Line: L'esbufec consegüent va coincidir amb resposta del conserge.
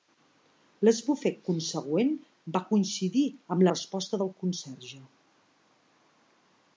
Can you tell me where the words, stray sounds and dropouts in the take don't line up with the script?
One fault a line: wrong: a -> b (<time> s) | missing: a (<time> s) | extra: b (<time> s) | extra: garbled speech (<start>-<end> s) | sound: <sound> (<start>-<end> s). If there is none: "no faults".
no faults